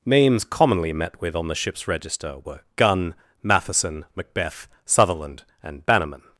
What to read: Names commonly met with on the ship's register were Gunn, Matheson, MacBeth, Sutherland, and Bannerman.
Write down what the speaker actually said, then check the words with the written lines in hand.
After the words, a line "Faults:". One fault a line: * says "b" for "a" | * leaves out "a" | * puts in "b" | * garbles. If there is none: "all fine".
Names commonly met with on the ship's register were Gunn, Matheson, MacBeth, Sutherland, and Bannerman.
Faults:
all fine